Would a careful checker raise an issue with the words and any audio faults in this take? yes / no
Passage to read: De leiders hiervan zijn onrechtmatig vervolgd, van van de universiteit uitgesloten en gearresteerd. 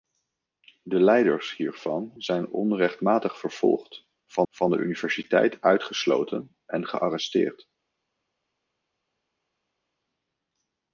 no